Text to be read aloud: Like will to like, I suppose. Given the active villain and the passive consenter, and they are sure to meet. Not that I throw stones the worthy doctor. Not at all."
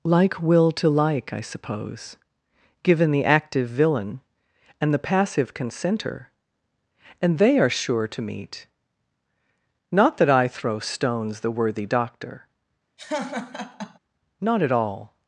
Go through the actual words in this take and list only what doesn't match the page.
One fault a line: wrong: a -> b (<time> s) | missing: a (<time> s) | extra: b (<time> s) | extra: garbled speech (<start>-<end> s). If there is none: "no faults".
no faults